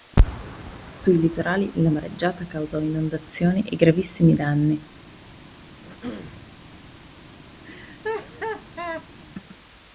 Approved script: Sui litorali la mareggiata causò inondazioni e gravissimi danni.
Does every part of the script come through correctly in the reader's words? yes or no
yes